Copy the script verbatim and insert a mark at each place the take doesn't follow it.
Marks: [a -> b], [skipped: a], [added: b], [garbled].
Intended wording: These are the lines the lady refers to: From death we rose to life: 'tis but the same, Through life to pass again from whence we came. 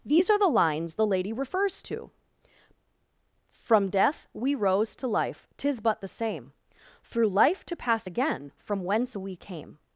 These are the lines the lady refers to: From death we rose to life: 'tis but the same, Through life to pass again from whence we came.